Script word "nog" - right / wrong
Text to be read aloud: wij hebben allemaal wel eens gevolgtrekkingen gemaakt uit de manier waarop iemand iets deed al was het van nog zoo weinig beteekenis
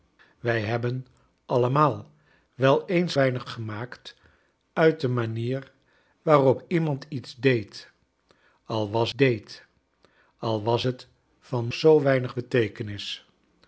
wrong